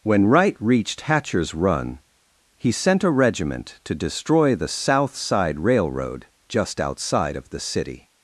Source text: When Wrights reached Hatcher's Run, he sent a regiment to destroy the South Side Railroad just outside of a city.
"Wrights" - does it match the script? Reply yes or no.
no